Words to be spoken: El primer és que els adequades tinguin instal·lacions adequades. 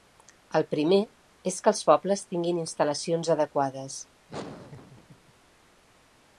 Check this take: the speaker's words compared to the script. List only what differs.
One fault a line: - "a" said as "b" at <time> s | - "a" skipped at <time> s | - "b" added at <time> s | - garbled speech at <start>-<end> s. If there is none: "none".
- "adequades" said as "pobles" at 1.9 s